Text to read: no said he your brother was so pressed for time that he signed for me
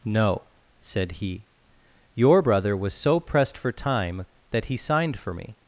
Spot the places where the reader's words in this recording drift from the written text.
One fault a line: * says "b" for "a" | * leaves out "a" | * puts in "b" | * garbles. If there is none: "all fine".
all fine